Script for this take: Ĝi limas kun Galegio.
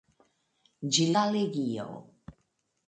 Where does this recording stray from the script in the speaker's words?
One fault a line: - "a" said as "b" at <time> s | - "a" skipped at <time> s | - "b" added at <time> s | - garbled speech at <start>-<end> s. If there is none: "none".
- "limas kun" skipped at 1.1 s